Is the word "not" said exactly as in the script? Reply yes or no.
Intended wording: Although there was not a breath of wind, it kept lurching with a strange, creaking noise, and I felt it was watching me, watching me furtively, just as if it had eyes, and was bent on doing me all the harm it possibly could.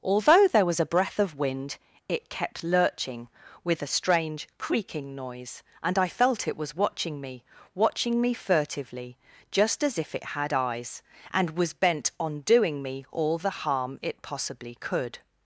no